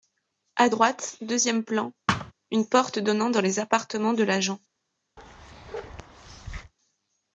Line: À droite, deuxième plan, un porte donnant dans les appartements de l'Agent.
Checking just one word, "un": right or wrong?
wrong